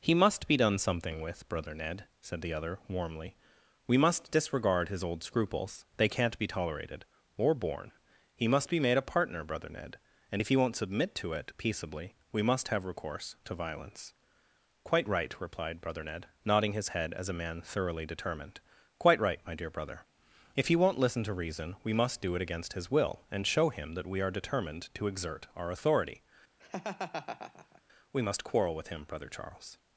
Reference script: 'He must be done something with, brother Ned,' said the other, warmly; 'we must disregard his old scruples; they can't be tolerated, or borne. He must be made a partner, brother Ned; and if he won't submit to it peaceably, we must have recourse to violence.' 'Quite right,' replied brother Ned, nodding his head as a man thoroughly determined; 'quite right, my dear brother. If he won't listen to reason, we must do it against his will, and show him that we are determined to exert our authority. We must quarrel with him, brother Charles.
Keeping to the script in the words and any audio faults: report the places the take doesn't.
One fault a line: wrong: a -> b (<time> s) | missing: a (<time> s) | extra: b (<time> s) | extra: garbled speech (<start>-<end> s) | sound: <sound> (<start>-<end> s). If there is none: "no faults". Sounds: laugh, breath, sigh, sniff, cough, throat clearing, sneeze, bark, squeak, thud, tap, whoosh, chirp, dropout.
sound: laugh (26.6-27.8 s)